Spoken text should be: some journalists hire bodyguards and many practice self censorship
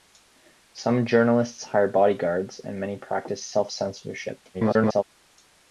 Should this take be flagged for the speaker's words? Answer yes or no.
yes